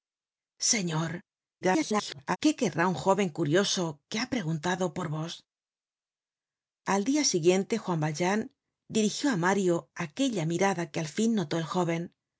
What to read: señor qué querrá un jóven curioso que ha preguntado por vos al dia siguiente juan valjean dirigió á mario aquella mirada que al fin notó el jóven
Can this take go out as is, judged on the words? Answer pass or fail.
fail